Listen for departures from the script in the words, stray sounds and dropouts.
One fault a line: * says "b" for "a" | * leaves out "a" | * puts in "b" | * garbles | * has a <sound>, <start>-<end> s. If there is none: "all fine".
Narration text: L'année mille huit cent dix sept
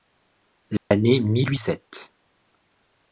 * has a dropout, 0.8-0.9 s
* leaves out "cent dix"